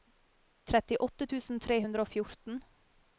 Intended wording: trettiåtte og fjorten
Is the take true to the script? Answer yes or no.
no